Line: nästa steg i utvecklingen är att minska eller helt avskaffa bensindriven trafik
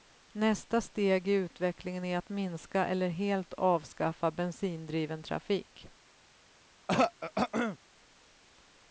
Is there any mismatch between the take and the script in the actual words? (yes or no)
no